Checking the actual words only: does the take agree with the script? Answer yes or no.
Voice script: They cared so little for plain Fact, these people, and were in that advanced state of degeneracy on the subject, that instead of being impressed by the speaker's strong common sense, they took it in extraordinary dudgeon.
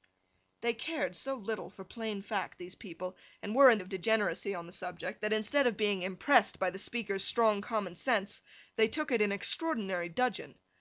no